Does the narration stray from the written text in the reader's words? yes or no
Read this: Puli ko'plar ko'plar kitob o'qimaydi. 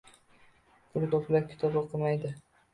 yes